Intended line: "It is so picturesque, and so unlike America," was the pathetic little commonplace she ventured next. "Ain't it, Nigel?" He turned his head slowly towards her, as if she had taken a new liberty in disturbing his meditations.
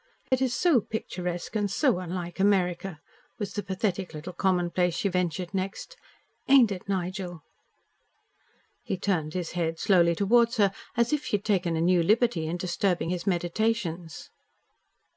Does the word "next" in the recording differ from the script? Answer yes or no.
no